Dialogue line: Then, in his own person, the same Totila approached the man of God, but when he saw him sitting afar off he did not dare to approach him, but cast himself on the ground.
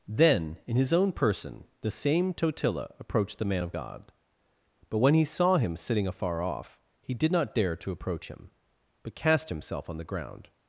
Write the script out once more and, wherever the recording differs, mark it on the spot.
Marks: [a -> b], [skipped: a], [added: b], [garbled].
Then, in his own person, the same Totila approached the man of God, but when he saw him sitting afar off he did not dare to approach him, but cast himself on the ground.